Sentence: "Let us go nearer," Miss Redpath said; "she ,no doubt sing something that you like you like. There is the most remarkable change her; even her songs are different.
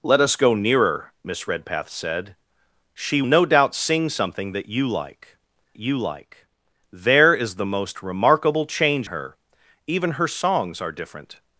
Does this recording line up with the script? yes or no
yes